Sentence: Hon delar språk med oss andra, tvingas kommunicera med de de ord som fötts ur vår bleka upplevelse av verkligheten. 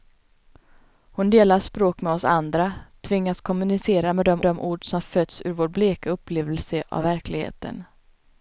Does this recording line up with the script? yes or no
yes